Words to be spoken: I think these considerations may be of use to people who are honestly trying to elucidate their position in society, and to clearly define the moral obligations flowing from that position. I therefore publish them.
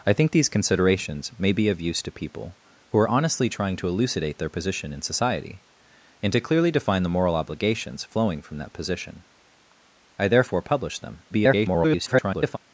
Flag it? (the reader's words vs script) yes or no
yes